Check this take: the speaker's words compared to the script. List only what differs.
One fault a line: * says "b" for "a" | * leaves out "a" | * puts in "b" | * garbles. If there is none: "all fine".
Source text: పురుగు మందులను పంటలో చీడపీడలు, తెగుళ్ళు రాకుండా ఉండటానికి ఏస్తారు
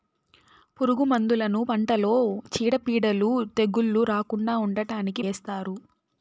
all fine